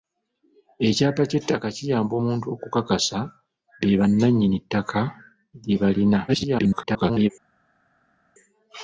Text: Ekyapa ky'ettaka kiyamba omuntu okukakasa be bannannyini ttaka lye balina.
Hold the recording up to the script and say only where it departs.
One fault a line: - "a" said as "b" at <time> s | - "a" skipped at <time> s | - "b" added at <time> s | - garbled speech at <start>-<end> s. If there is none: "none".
- garbled speech at 6.3-7.3 s